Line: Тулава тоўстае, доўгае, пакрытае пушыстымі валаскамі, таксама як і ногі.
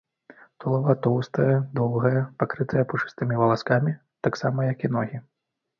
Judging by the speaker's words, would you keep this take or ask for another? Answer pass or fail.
pass